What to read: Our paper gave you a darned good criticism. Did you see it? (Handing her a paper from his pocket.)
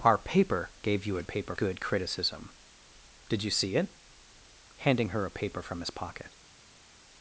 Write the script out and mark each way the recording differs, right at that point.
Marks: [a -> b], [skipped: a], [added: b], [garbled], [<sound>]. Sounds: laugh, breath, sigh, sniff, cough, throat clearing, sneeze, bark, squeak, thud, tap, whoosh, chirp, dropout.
Our paper gave you a [darned -> paper] good criticism. Did you see it? (Handing her a paper from his pocket.)